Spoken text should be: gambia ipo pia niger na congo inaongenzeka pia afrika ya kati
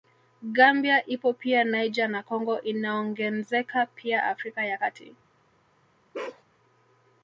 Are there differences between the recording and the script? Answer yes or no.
no